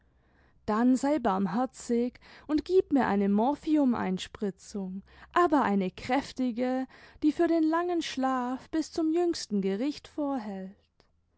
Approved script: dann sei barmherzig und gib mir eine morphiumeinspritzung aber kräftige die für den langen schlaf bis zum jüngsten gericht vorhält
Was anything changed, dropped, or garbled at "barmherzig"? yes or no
no